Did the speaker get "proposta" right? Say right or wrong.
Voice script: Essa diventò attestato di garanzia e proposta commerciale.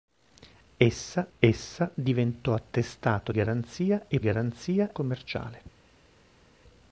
wrong